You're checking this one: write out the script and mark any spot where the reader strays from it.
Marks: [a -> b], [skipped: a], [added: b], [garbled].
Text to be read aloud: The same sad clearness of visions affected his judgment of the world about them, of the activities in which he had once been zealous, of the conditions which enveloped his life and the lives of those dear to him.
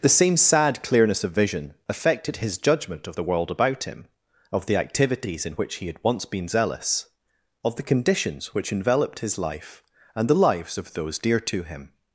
The same sad clearness of [visions -> vision] affected his judgment of the world about [them, -> him] of the activities in which he had once been zealous, of the conditions which enveloped his life and the lives of those dear to him.